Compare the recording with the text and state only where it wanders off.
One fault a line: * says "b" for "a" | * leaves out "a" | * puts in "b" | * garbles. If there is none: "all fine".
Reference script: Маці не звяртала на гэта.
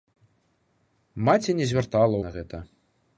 all fine